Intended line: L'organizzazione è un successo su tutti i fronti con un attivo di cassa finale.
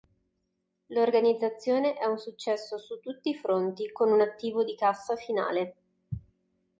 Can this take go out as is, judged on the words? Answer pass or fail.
pass